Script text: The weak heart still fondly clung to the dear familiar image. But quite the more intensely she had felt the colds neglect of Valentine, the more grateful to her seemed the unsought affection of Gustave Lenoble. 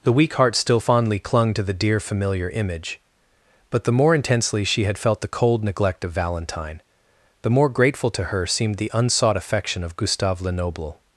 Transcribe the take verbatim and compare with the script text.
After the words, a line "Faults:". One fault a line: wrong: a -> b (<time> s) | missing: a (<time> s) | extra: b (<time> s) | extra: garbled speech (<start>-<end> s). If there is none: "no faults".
The weak heart still fondly clung to the dear familiar image. But the more intensely she had felt the cold neglect of Valentine, the more grateful to her seemed the unsought affection of Gustave Lenoble.
Faults:
missing: quite (3.8 s)
wrong: colds -> cold (5.3 s)